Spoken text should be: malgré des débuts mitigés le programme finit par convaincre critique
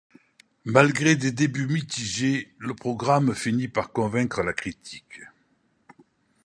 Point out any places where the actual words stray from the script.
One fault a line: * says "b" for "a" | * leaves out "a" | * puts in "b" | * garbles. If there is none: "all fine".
* puts in "la"